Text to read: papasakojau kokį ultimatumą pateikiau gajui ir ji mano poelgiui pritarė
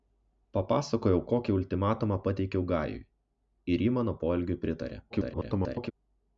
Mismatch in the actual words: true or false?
true